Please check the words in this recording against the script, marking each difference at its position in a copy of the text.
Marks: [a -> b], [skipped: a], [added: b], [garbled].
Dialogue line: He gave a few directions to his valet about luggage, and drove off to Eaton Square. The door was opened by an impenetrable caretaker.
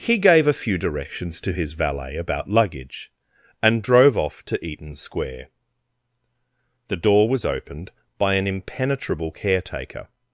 He gave a few directions to his valet about luggage, and drove off to Eaton Square. The door was opened by an impenetrable caretaker.